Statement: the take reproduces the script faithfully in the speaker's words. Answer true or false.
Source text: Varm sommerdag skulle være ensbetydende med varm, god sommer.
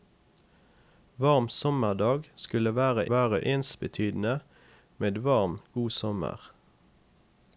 false